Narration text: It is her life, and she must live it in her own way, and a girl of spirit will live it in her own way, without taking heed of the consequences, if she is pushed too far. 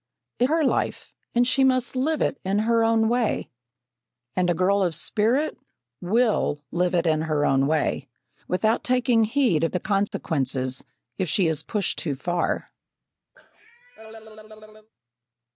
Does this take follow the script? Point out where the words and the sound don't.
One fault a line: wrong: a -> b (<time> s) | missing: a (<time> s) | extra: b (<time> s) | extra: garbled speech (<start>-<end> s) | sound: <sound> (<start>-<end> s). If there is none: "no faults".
missing: is (0.5 s)
sound: dropout (10.1-10.1 s)
sound: cough (13.3-14.9 s)